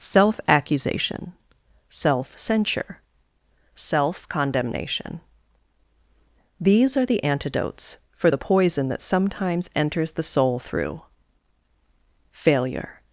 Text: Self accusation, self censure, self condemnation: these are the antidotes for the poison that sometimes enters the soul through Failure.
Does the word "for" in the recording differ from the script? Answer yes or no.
no